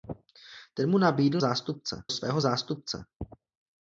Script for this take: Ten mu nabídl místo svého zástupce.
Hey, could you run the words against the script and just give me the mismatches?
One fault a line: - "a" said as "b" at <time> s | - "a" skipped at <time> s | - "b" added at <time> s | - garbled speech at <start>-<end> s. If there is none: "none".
- "místo" said as "zástupce" at 1.4 s